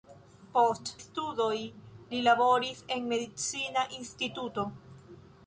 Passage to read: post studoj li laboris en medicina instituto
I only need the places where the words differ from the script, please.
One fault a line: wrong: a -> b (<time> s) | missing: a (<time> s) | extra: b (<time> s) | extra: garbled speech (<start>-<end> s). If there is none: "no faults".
no faults